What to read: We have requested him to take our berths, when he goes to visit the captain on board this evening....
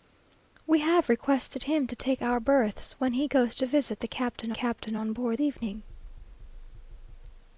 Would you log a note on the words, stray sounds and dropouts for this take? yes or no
yes